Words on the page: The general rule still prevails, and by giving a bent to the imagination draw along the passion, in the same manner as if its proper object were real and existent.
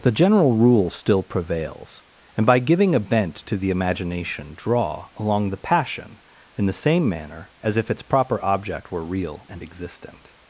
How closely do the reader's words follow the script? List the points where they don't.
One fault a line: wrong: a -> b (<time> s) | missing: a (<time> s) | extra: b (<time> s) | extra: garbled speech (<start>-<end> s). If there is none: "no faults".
no faults